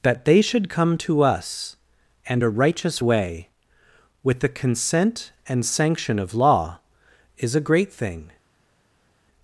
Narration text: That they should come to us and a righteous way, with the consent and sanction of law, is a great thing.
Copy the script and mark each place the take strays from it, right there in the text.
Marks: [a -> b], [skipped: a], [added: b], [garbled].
That they should come to us and a righteous way, with the consent and sanction of law, is a great thing.